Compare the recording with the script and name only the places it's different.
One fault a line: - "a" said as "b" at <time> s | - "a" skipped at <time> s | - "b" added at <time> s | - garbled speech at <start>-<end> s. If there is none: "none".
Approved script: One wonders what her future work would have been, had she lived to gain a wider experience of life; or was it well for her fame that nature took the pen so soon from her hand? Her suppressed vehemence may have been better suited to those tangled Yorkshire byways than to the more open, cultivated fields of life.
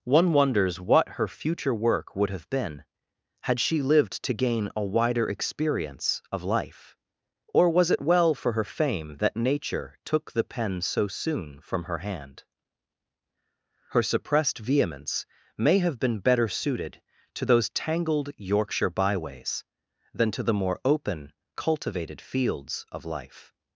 none